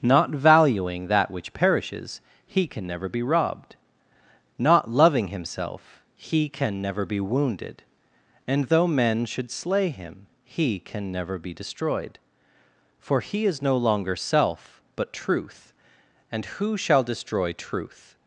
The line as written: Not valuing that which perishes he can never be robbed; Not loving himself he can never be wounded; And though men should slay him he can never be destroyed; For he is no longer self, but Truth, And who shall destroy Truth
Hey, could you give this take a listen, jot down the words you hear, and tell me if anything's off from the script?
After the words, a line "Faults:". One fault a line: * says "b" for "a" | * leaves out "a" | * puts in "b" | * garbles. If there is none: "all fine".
Not valuing that which perishes he can never be robbed; Not loving himself he can never be wounded; And though men should slay him he can never be destroyed; For he is no longer self, but Truth, And who shall destroy Truth
Faults:
all fine